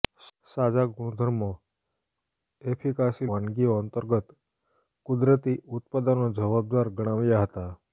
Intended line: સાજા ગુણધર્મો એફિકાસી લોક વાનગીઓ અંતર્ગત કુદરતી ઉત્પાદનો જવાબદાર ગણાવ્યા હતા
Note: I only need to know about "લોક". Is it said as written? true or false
false